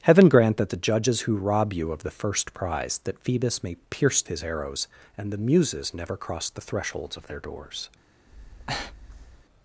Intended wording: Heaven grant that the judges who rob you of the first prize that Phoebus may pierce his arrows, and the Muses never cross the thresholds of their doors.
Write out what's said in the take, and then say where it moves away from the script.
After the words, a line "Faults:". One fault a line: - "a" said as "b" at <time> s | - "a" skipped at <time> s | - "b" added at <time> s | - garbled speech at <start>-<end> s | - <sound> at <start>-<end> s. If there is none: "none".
Heaven grant that the judges who rob you of the first prize that Phoebus may pierce his arrows, and the Muses never cross the thresholds of their doors.
Faults:
- breath at 8.3-9.5 s